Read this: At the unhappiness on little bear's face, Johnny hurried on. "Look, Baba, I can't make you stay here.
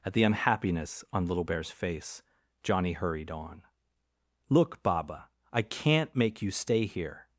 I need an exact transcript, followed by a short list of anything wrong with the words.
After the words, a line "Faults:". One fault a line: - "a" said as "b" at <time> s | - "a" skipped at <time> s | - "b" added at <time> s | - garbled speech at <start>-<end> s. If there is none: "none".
At the unhappiness on little bear's face, Johnny hurried on. "Look, Baba, I can't make you stay here.
Faults:
none